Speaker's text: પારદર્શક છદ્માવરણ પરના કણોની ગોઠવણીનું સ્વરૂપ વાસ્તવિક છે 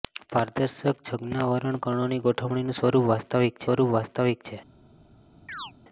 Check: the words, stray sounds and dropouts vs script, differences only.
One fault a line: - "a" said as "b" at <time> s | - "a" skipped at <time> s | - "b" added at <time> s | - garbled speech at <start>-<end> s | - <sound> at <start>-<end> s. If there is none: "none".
- "પરના" skipped at 1.8 s
- "સ્વરૂપ વાસ્તવિક" added at 3.6 s
- chirp at 5.5-5.7 s